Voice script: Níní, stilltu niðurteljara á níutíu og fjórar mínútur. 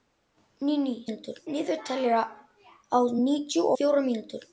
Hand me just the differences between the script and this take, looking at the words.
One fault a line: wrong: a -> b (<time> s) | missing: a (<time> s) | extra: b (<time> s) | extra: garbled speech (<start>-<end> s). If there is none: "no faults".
wrong: stilltu -> mínútur (1.1 s)
missing: og (3.7 s)